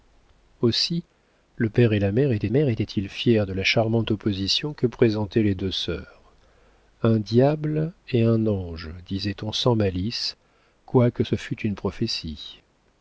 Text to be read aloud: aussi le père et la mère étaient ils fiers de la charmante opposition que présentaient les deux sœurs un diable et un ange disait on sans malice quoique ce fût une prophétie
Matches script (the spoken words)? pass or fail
fail